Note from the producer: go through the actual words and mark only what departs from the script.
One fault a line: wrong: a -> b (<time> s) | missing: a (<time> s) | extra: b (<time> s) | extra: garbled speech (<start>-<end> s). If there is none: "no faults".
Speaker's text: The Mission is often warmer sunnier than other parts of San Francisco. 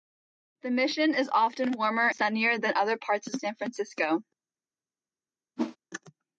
no faults